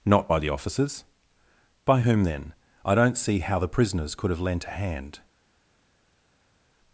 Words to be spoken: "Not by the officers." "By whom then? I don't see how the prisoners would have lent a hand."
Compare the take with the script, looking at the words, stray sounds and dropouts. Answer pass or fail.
fail